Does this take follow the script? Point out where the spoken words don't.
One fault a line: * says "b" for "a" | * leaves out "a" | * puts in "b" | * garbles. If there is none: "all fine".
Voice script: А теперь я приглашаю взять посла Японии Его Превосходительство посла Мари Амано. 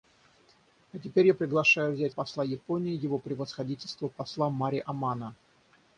all fine